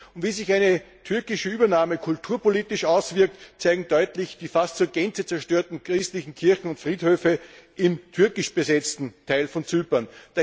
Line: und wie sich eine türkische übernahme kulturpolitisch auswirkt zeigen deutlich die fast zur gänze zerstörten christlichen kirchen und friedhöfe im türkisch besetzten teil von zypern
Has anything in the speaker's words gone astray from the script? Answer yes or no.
no